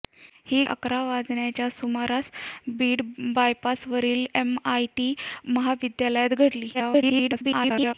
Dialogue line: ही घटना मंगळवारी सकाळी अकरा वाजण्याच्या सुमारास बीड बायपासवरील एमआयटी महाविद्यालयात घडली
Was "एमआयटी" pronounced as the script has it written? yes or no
yes